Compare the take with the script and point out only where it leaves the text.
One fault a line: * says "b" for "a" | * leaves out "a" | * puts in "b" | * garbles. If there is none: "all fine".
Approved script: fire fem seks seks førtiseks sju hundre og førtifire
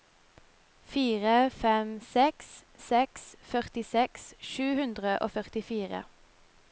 all fine